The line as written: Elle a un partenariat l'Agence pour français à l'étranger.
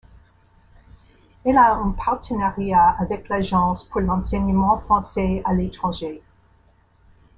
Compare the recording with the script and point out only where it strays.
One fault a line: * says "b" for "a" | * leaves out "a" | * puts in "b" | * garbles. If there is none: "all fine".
* puts in "avec"
* puts in "l'enseignement"